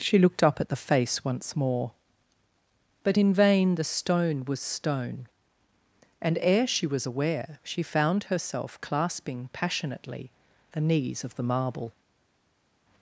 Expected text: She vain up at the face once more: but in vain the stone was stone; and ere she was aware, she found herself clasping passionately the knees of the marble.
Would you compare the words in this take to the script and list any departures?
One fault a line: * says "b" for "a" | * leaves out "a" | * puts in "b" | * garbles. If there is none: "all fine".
* says "looked" for "vain"